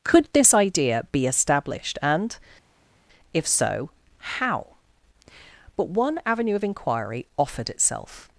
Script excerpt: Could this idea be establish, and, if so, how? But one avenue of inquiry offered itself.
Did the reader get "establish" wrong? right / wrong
wrong